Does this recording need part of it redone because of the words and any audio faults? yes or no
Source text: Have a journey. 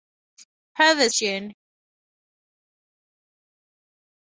no